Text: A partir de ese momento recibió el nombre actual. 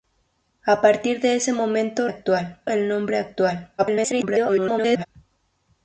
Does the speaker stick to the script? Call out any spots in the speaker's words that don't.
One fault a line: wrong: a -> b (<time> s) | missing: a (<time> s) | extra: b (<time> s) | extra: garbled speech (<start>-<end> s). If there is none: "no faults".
wrong: recibió -> actual (2.1 s)
extra: garbled speech (3.8-5.1 s)